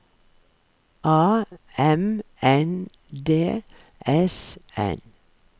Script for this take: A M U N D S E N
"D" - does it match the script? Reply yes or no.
yes